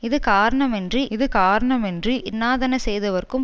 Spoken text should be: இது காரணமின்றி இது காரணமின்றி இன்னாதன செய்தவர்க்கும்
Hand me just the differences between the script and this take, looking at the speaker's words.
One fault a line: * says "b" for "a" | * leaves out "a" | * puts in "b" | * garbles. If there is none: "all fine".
all fine